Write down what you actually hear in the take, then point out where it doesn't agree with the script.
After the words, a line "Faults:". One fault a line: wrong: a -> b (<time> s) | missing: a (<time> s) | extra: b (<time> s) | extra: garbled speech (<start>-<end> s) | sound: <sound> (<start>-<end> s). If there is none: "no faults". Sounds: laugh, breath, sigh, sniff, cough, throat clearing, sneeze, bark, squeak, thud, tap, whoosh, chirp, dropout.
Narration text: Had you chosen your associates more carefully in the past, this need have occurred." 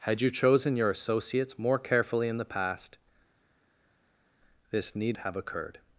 Had you chosen your associates more carefully in the past, this need have occurred."
Faults:
no faults